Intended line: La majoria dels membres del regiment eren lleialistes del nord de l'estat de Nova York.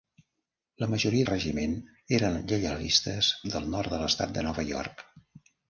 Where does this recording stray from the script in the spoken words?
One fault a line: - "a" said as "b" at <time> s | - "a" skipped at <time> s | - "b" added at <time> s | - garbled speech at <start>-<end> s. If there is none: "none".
- "dels membres del" skipped at 1.3 s